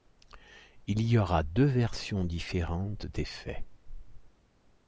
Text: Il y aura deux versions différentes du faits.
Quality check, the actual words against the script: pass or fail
fail